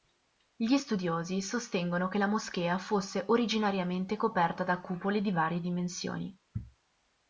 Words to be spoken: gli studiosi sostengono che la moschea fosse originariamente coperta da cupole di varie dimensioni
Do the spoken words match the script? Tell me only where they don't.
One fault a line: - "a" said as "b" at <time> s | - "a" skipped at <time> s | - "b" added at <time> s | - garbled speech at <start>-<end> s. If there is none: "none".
none